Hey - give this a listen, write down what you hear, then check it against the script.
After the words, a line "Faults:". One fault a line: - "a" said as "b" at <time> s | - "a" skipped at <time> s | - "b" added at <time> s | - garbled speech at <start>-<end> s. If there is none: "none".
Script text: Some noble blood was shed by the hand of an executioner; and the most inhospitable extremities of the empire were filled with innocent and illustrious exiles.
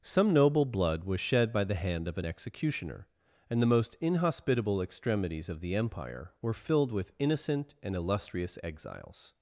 Some noble blood was shed by the hand of an executioner; and the most inhospitable extremities of the empire were filled with innocent and illustrious exiles.
Faults:
none